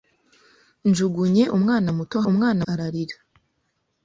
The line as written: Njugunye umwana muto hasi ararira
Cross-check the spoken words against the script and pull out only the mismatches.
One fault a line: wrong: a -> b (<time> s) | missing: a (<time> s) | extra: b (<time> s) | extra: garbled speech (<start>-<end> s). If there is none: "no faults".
wrong: hasi -> umwana (2.3 s)